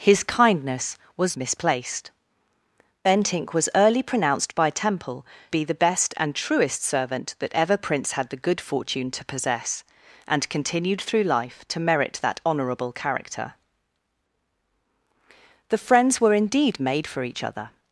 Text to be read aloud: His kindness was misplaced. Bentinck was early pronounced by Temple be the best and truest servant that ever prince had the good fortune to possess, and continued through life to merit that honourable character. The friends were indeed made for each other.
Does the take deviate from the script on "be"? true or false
false